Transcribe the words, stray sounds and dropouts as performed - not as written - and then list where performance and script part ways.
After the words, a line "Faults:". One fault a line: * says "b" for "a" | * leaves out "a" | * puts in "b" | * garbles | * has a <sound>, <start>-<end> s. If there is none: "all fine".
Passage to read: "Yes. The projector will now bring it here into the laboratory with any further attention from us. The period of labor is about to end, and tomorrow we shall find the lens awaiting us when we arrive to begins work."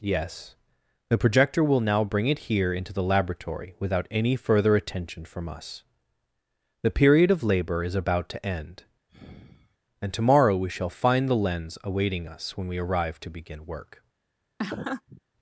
"Yes. The projector will now bring it here into the laboratory without any further attention from us. The period of labor is about to end, and tomorrow we shall find the lens awaiting us when we arrive to begin work."
Faults:
* says "without" for "with"
* has a sigh, 9.1-9.8 s
* says "begin" for "begins"
* has a laugh, 14.6-15.2 s